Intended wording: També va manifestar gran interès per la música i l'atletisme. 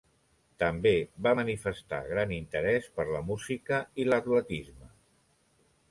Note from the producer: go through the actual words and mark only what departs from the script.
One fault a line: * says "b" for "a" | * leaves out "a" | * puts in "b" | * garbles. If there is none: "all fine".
all fine